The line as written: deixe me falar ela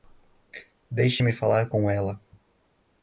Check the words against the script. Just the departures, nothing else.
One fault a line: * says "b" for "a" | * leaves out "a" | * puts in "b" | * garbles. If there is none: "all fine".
* puts in "com"